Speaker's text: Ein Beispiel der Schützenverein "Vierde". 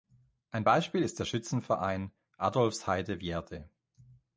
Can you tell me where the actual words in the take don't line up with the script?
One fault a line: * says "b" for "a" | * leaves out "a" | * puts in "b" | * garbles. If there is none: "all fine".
* puts in "ist"
* puts in "Adolphsheide"